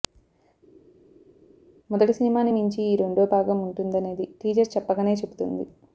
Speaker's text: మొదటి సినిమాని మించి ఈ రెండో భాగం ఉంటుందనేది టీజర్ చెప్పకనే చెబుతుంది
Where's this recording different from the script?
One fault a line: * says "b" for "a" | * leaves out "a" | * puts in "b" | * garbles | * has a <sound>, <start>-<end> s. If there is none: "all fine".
all fine